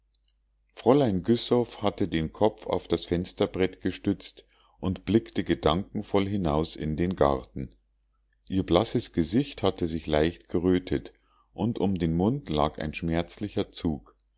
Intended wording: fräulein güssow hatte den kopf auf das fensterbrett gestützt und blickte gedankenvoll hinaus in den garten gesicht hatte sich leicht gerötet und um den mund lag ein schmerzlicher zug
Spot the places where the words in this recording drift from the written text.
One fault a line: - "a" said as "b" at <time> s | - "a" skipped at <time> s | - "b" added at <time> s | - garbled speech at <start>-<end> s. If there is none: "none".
- "ihr blasses" added at 8.5 s